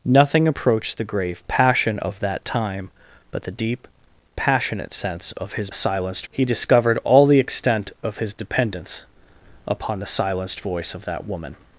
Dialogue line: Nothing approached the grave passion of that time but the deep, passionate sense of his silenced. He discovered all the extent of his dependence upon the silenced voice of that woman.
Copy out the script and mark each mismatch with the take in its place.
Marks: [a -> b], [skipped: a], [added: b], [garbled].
Nothing approached the grave passion of that time but the deep, passionate sense of his silenced. He discovered all the extent of his dependence upon the silenced voice of that woman.